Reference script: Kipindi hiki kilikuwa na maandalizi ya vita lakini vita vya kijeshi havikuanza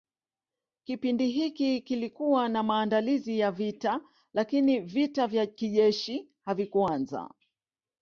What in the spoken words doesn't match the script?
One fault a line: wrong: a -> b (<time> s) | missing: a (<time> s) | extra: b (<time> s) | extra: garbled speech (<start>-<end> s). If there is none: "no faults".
no faults